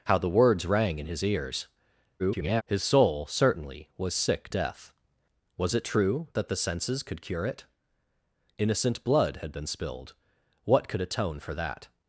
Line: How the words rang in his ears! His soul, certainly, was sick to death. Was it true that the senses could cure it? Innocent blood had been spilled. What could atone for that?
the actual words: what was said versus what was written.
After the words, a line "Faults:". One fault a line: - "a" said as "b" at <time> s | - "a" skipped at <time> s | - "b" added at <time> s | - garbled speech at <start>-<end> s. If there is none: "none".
How the words rang in his ears! [garbled] His soul, certainly, was sick death. Was it true that the senses could cure it? Innocent blood had been spilled. What could atone for that?
Faults:
- garbled speech at 2.2-2.6 s
- "to" skipped at 4.5 s